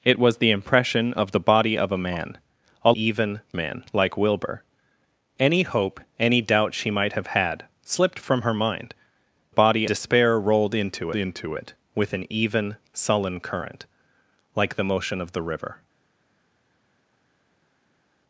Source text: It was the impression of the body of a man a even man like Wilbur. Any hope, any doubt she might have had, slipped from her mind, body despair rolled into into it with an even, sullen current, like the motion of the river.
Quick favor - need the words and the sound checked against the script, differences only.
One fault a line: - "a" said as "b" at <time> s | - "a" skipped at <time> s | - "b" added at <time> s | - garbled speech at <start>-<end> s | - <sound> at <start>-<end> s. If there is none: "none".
none